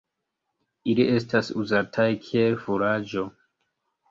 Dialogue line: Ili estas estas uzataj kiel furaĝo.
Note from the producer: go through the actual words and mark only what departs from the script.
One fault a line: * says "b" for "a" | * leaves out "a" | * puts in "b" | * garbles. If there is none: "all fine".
* leaves out "estas"